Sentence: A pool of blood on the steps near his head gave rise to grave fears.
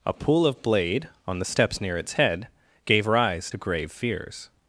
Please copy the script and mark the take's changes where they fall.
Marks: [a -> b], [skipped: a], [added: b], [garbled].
A pool of [blood -> blade] on the steps near [his -> its] head gave rise to grave fears.